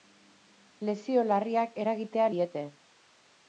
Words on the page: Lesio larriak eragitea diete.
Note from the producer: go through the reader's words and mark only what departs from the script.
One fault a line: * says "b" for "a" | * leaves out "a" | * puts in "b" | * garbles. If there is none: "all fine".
all fine